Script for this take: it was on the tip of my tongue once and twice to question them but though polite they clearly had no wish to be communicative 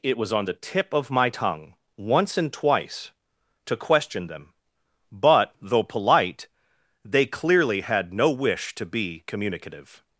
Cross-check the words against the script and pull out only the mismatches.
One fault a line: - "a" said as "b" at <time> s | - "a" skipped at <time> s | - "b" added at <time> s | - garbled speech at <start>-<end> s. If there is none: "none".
none